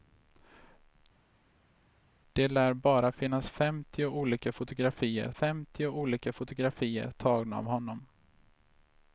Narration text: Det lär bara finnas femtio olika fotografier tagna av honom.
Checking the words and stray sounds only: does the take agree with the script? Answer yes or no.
no